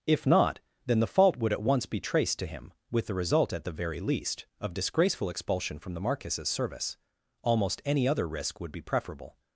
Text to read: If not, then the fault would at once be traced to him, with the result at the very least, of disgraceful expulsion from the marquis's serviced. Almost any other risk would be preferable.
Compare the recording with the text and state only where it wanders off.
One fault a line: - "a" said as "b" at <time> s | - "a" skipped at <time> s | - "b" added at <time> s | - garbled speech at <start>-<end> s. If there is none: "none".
- "serviced" said as "service" at 6.5 s